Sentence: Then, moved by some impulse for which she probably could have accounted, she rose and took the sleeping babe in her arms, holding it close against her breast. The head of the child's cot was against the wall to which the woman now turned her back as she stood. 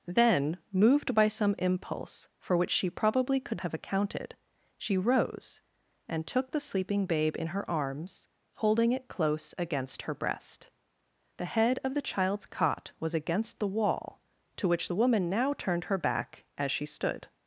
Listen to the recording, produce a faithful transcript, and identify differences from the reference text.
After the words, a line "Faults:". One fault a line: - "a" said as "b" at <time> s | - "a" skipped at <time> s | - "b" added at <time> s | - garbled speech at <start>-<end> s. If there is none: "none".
Then, moved by some impulse for which she probably could have accounted, she rose and took the sleeping babe in her arms, holding it close against her breast. The head of the child's cot was against the wall to which the woman now turned her back as she stood.
Faults:
none